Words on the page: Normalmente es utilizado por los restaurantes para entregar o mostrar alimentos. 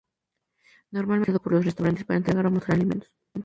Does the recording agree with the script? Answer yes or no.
yes